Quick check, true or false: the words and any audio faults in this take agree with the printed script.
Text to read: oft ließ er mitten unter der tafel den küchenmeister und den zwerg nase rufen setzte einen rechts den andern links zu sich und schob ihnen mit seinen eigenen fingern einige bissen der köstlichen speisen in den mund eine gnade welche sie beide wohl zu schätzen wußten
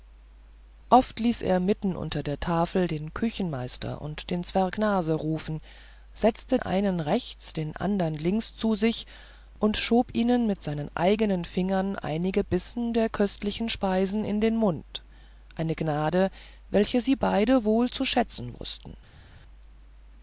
true